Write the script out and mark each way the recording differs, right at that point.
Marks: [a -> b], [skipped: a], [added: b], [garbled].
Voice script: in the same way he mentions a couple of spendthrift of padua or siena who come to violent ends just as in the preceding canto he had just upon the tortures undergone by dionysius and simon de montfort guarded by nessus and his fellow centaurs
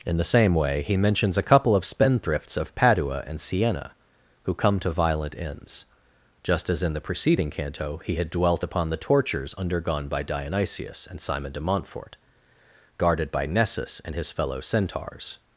in the same way he mentions a couple of [spendthrift -> spendthrifts] of padua [or -> and] siena who come to violent ends just as in the preceding canto he had [just -> dwelt] upon the tortures undergone by dionysius and simon de montfort guarded by nessus and his fellow centaurs